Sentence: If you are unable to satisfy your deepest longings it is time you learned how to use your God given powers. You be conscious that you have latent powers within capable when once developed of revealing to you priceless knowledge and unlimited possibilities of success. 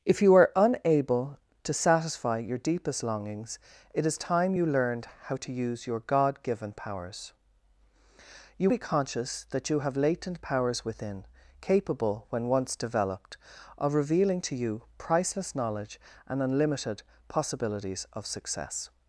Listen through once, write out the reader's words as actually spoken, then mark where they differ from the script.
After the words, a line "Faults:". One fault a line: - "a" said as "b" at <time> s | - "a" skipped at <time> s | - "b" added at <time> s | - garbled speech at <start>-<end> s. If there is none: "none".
If you are unable to satisfy your deepest longings it is time you learned how to use your God given powers. You be conscious that you have latent powers within capable when once developed of revealing to you priceless knowledge and unlimited possibilities of success.
Faults:
none